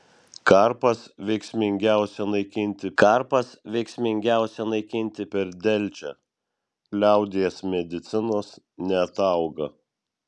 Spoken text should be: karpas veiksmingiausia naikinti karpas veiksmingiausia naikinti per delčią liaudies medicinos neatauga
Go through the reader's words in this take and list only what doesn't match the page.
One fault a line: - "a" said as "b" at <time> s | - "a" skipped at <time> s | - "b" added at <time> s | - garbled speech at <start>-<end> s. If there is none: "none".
none